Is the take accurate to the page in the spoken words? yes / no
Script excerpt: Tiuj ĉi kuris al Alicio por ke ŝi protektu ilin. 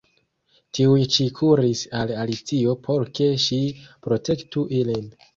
yes